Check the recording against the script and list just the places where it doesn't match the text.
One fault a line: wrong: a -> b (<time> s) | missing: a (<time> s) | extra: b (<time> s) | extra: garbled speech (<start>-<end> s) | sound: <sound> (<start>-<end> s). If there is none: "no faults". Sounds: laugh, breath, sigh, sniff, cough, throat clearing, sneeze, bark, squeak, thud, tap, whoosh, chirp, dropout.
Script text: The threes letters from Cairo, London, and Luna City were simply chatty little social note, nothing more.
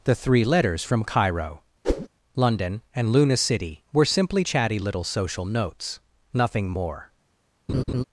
wrong: threes -> three (0.1 s)
sound: whoosh (1.8-2.1 s)
wrong: note -> notes (5.4 s)
sound: laugh (7.7-8.0 s)